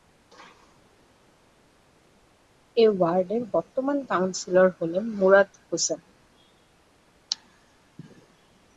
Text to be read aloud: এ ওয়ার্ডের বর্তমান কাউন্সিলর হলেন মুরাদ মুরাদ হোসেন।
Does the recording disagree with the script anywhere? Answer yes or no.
yes